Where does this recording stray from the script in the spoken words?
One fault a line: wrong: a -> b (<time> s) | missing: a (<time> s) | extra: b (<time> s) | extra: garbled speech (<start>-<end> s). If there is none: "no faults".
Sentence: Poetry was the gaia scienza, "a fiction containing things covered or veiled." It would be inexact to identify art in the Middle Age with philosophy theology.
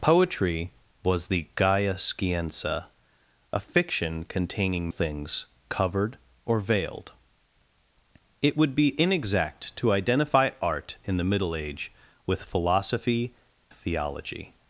no faults